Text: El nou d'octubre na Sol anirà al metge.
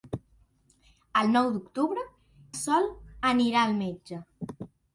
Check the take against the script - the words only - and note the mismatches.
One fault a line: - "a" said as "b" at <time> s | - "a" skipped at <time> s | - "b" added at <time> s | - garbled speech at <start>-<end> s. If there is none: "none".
- "na" skipped at 2.0 s